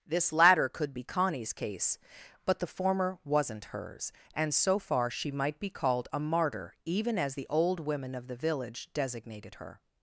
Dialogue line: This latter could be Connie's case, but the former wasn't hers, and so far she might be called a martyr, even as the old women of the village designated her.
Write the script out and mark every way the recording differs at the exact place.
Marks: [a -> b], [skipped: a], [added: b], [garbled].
This latter could be Connie's case, but the former wasn't hers, and so far she might be called a martyr, even as the old women of the village designated her.